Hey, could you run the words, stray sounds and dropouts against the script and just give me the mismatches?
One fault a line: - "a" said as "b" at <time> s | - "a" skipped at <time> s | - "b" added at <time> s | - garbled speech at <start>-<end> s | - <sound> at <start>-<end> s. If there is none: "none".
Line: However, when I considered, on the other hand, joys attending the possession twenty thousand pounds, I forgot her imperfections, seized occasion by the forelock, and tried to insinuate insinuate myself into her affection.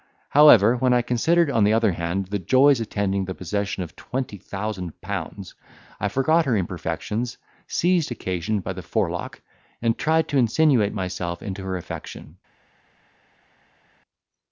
- "the" added at 2.2 s
- "of" added at 3.8 s
- "insinuate" skipped at 10.9 s